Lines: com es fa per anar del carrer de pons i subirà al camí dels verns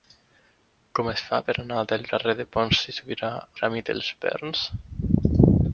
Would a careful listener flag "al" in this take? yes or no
yes